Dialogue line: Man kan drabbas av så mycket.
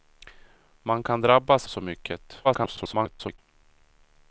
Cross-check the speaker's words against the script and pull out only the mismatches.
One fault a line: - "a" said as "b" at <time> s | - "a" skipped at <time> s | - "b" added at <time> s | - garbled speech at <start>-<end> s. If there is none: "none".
- "av" skipped at 1.7 s
- garbled speech at 2.4-3.4 s